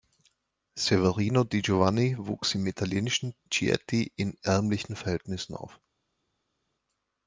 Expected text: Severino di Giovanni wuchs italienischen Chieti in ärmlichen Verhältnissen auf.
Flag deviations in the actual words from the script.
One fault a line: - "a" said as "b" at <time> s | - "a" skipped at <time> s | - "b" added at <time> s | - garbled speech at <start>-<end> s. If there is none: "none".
- "im" added at 2.5 s